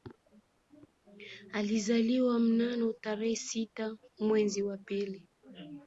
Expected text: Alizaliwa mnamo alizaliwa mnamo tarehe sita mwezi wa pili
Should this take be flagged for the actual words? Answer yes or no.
yes